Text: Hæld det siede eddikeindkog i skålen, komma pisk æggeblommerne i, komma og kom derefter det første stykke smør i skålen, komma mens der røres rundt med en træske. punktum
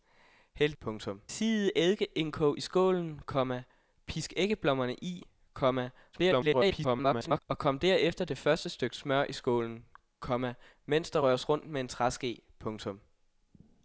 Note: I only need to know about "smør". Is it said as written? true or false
true